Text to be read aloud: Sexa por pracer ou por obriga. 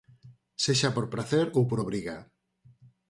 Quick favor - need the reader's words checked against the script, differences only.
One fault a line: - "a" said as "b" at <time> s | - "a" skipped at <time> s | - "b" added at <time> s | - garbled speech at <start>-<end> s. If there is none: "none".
none